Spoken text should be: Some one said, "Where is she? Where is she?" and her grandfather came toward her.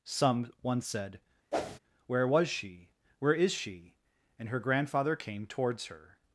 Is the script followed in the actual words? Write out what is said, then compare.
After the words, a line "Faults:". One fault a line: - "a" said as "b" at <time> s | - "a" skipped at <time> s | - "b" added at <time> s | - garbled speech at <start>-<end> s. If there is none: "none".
Some one said, "Where was she? Where is she?" and her grandfather came towards her.
Faults:
- "is" said as "was" at 2.3 s
- "toward" said as "towards" at 5.5 s